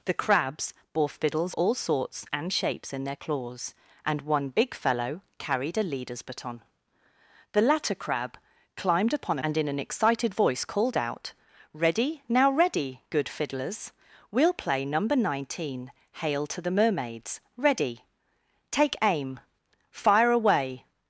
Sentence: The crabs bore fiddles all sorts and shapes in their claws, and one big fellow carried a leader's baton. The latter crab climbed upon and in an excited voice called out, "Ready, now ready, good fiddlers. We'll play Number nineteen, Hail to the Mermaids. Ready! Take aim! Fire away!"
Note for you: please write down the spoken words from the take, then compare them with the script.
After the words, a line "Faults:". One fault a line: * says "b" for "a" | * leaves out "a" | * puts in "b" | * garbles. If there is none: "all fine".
The crabs bore fiddles all sorts and shapes in their claws, and one big fellow carried a leader's baton. The latter crab climbed upon and in an excited voice called out, "Ready, now ready, good fiddlers. We'll play Number nineteen, Hail to the Mermaids. Ready! Take aim! Fire away!"
Faults:
all fine